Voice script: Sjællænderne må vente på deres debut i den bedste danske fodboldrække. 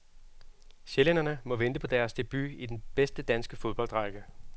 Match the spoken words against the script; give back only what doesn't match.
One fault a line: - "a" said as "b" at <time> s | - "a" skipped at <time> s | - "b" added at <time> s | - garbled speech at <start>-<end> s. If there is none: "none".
none